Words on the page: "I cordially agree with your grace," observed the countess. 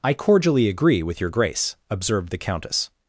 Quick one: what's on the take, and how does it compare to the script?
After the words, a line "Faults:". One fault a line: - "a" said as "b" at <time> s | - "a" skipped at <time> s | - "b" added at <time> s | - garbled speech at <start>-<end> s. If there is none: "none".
"I cordially agree with your grace," observed the countess.
Faults:
none